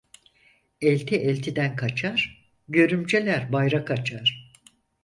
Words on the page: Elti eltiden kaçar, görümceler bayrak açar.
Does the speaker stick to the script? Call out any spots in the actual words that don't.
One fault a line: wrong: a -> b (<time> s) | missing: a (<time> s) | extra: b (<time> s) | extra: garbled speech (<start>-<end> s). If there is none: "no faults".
no faults